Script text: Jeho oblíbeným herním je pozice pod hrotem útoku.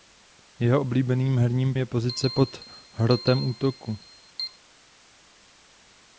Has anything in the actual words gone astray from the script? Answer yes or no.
no